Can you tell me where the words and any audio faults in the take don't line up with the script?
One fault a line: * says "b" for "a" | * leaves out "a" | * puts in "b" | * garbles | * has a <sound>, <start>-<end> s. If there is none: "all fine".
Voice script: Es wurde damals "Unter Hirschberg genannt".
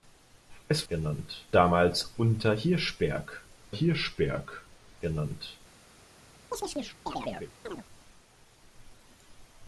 * says "genannt" for "wurde"
* puts in "Hirschberg"
* has a chirp, 6.5-7.8 s